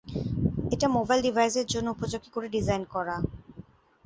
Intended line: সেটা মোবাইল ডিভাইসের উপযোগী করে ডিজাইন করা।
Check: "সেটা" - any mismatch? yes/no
yes